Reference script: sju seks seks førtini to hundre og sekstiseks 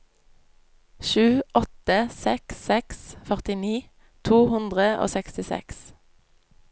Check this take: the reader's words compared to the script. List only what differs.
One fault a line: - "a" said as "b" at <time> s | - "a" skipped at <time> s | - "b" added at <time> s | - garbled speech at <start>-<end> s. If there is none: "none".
- "åtte" added at 1.6 s